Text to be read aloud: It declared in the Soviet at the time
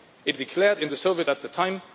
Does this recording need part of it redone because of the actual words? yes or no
no